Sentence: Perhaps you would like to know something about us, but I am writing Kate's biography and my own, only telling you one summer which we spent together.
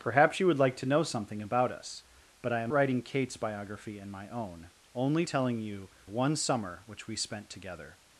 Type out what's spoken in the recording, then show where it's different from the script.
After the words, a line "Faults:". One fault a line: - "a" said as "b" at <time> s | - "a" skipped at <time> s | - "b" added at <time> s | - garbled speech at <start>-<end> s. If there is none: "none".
Perhaps you would like to know something about us, but I am writing Kate's biography and my own, only telling you one summer which we spent together.
Faults:
none